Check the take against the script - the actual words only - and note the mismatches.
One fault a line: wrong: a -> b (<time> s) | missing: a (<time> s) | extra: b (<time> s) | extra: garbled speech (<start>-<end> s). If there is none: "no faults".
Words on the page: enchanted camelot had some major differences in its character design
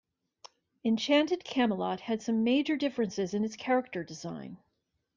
no faults